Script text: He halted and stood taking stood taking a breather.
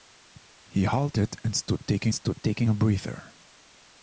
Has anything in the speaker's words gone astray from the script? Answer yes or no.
no